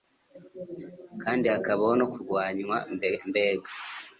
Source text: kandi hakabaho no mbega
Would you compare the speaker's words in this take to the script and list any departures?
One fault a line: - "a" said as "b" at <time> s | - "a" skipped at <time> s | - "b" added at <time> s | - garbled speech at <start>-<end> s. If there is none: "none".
- "kurwanywa" added at 2.1 s